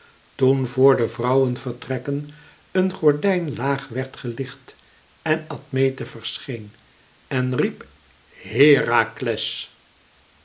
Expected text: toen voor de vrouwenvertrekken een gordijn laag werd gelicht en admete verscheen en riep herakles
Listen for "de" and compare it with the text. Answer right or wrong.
right